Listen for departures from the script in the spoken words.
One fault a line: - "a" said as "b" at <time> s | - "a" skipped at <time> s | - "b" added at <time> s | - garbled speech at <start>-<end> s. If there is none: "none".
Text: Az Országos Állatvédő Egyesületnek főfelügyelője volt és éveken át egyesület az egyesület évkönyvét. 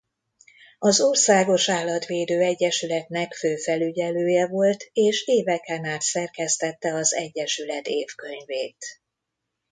- "egyesület" said as "szerkesztette" at 6.0 s